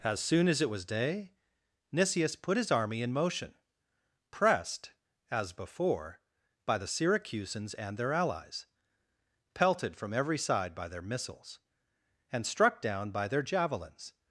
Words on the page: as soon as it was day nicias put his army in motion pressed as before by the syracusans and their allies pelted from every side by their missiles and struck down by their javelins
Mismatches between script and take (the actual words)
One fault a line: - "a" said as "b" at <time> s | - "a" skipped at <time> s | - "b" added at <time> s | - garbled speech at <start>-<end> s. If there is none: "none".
none